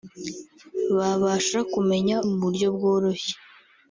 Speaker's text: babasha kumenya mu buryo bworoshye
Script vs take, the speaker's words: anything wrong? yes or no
no